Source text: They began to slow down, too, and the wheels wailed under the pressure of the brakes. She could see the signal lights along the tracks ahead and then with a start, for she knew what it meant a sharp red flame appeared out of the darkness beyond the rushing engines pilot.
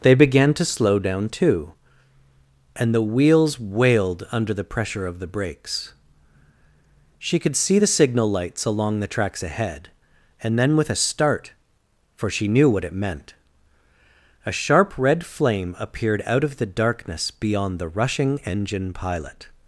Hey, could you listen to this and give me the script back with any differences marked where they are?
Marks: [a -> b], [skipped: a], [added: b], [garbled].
They began to slow down, too, and the wheels wailed under the pressure of the brakes. She could see the signal lights along the tracks ahead and then with a start, for she knew what it meant a sharp red flame appeared out of the darkness beyond the rushing [engines -> engine] pilot.